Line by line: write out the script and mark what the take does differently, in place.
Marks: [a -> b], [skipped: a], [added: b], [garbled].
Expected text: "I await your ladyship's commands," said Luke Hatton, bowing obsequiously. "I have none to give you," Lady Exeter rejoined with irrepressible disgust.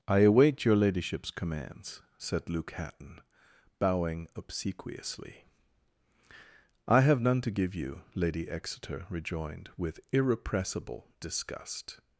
"I await your ladyship's commands," said Luke Hatton, bowing obsequiously. "I have none to give you," Lady Exeter rejoined with irrepressible disgust.